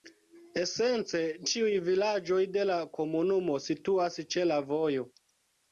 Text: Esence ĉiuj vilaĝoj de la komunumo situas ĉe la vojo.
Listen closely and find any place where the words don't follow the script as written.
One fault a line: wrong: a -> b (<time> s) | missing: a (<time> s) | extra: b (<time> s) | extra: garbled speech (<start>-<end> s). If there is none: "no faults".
no faults